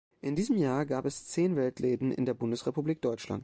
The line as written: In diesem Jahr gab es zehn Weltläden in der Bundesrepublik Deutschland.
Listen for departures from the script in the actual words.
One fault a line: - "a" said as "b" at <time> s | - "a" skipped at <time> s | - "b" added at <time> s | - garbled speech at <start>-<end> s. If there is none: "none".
none